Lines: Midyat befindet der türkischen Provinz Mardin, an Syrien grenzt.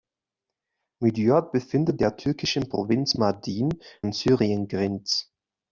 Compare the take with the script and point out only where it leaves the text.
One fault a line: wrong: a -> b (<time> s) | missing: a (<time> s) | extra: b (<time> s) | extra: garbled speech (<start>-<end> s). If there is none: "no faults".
no faults